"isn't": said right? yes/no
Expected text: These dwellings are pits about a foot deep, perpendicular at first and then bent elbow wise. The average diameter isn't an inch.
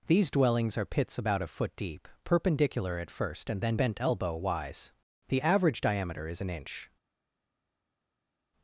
no